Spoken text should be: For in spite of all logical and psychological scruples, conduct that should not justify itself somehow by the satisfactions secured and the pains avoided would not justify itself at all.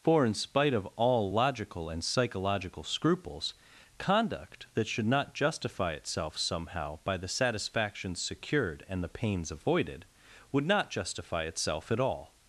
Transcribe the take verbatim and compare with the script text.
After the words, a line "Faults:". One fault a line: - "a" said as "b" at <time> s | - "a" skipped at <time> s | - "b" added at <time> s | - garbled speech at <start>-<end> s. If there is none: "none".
For in spite of all logical and psychological scruples, conduct that should not justify itself somehow by the satisfactions secured and the pains avoided would not justify itself at all.
Faults:
none